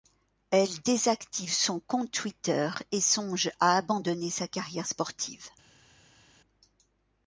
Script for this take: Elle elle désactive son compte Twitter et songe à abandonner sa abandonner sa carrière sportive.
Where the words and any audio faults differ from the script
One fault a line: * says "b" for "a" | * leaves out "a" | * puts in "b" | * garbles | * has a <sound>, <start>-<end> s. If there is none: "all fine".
* leaves out "elle"
* leaves out "abandonner sa"